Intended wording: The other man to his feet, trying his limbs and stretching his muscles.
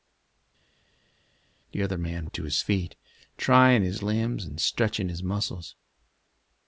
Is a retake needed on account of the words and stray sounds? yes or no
no